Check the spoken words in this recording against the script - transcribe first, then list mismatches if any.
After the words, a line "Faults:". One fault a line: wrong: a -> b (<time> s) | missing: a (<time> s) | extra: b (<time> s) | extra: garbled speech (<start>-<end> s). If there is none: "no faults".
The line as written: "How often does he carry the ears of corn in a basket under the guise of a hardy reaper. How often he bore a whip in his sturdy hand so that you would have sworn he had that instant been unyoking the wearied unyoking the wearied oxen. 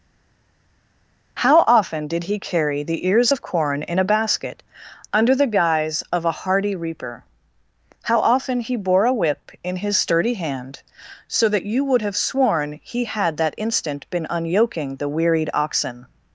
"How often did he carry the ears of corn in a basket under the guise of a hardy reaper. How often he bore a whip in his sturdy hand so that you would have sworn he had that instant been unyoking the wearied oxen.
Faults:
wrong: does -> did (2.1 s)
missing: unyoking the wearied (15.5 s)